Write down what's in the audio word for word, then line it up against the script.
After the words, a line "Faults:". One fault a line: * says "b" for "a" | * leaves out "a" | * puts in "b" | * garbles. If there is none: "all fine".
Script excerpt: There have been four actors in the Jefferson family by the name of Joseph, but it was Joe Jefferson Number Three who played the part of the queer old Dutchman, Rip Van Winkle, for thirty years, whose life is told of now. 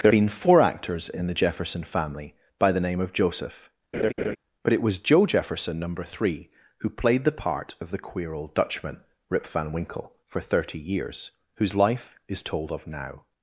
There been four actors in the Jefferson family by the name of Joseph, but it was Joe Jefferson Number Three who played the part of the queer old Dutchman, Rip Van Winkle, for thirty years, whose life is told of now.
Faults:
* leaves out "have"